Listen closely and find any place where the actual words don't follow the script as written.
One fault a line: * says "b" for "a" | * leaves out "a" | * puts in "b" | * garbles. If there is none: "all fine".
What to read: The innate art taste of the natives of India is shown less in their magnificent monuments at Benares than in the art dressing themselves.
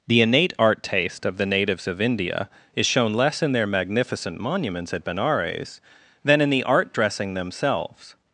all fine